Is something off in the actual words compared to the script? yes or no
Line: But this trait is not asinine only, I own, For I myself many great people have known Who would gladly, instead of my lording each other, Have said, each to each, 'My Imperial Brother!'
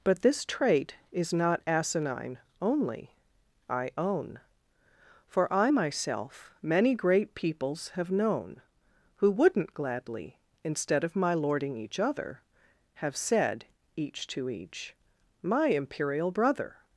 yes